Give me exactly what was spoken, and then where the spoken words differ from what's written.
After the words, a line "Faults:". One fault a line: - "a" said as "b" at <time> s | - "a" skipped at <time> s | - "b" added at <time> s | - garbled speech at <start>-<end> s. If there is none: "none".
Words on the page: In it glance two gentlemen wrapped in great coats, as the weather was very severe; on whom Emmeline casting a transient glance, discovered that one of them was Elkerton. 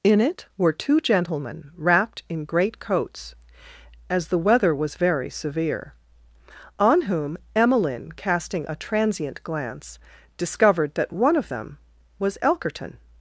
In it were two gentlemen wrapped in great coats, as the weather was very severe; on whom Emmeline casting a transient glance, discovered that one of them was Elkerton.
Faults:
- "glance" said as "were" at 0.6 s